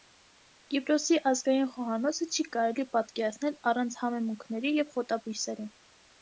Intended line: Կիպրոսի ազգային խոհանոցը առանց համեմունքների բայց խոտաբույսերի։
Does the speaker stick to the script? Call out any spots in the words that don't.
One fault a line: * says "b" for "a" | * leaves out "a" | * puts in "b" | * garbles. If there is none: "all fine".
* puts in "չի կարելի պատկերացնել"
* says "և" for "բայց"